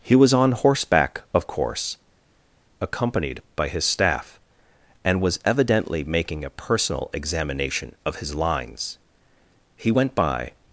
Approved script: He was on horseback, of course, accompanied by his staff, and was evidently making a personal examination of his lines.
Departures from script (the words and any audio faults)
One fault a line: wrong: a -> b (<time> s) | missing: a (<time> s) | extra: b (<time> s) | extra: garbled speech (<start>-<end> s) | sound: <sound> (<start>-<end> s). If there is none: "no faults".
extra: He went by (9.8 s)